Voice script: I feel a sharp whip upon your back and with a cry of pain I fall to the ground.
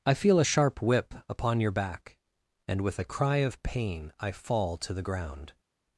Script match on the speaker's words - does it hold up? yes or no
yes